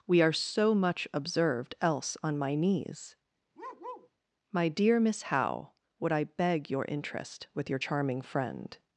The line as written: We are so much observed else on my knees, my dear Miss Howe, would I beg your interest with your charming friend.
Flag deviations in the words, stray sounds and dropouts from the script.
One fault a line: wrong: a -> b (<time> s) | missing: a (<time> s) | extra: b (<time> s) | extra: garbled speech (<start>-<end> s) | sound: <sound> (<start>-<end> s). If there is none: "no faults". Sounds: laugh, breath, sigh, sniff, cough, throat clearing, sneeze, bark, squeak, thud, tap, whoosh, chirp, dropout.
sound: bark (3.5-4.1 s)